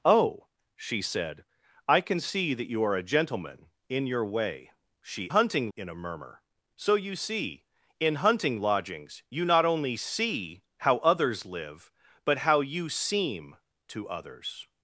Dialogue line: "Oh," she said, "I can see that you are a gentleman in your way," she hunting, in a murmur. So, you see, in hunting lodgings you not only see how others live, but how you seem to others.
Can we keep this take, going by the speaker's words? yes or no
yes